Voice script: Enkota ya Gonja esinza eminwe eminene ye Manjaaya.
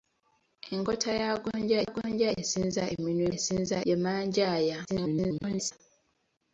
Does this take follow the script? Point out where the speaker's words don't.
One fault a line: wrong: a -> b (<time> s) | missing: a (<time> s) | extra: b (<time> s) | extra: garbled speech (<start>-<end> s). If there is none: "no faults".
extra: Gonja (1.9 s)
wrong: eminene -> esinza (3.4 s)
extra: garbled speech (4.9-5.7 s)